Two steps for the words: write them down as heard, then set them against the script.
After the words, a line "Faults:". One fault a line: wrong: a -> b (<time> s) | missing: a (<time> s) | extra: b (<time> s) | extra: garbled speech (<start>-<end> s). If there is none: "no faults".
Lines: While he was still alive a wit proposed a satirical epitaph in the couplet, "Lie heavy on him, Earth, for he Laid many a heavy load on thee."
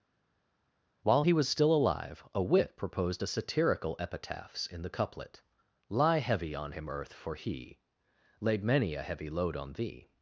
While he was still alive a wit proposed a satirical epitaphs in the couplet, "Lie heavy on him, Earth, for he Laid many a heavy load on thee."
Faults:
wrong: epitaph -> epitaphs (4.0 s)